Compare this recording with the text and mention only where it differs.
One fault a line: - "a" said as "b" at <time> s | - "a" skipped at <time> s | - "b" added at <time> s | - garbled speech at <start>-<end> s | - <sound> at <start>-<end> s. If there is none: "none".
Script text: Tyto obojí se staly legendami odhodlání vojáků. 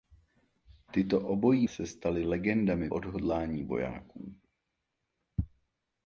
none